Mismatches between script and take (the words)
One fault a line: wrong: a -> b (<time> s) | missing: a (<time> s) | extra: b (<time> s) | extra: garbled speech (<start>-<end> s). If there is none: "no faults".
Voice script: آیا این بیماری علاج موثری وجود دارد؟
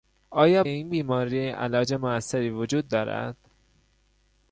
no faults